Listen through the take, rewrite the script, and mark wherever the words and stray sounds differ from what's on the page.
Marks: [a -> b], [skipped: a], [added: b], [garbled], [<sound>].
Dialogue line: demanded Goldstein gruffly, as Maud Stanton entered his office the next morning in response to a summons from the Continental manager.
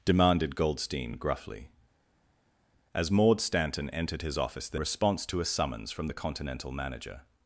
demanded Goldstein gruffly, as Maud Stanton entered his office the [skipped: next morning in] response to a summons from the Continental manager.